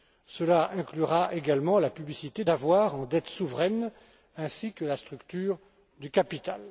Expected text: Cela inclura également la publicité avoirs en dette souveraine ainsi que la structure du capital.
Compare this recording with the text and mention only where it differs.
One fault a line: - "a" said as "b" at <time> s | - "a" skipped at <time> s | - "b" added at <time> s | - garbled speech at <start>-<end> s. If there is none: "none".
none